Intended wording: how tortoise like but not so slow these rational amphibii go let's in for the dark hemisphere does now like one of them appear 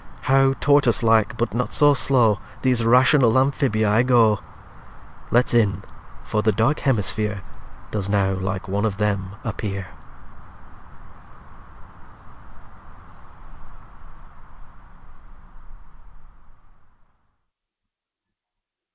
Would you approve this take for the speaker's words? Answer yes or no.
yes